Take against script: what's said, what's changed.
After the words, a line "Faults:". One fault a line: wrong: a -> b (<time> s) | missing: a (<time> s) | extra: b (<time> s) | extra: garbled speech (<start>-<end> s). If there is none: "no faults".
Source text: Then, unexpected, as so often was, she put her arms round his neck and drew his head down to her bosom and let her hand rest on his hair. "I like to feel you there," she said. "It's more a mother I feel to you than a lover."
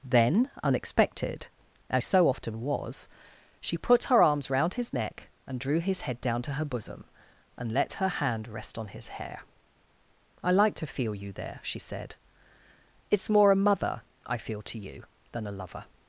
Then, unexpected, as so often was, she put her arms round his neck and drew his head down to her bosom and let her hand rest on his hair. "I like to feel you there," she said. "It's more a mother I feel to you than a lover."
Faults:
no faults